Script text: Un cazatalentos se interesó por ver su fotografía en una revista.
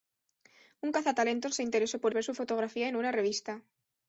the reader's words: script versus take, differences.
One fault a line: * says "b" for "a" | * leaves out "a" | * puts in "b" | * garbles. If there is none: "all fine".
all fine